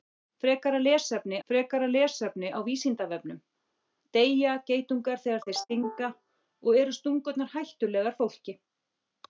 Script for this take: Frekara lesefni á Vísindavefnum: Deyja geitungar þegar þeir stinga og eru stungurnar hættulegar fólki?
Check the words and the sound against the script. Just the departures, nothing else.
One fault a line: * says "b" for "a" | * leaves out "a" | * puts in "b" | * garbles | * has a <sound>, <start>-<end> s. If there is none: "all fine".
* puts in "frekara lesefni"